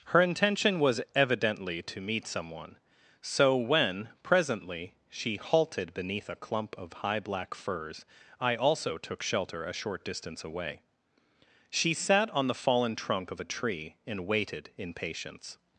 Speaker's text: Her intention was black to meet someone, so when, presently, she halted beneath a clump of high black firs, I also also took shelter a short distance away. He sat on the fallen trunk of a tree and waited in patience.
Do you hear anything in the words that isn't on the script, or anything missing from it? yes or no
yes